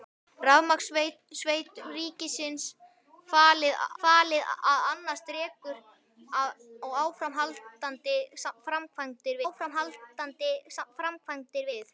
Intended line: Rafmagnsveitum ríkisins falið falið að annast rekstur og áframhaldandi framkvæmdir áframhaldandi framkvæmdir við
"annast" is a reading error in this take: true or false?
false